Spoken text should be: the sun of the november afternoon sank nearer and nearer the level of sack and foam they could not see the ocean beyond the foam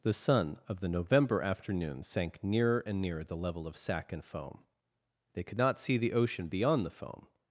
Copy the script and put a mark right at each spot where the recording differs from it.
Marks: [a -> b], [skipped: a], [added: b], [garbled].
the sun of the november afternoon sank nearer and nearer the level of sack and foam they could not see the ocean beyond the foam